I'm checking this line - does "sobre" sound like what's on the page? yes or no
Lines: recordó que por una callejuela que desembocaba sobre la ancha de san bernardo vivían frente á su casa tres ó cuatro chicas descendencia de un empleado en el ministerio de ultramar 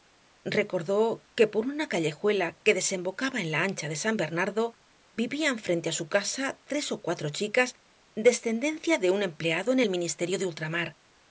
no